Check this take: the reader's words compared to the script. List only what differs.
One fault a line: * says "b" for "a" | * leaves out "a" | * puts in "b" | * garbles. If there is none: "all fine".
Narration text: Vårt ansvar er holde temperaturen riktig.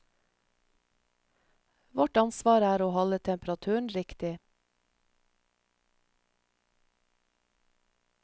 * puts in "å"